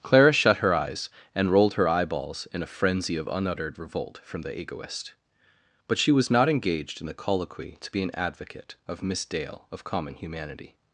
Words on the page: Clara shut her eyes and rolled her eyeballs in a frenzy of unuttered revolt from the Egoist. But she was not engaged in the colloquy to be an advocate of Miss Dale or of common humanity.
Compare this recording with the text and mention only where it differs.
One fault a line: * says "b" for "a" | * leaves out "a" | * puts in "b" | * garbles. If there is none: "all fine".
* leaves out "or"